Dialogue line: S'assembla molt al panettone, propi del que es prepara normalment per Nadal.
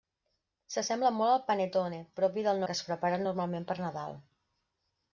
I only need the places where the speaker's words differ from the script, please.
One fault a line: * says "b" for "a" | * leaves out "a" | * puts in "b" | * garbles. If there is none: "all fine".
all fine